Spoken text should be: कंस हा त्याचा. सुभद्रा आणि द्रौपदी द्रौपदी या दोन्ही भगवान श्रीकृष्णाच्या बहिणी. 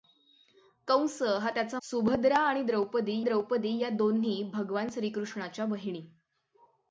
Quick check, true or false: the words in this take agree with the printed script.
true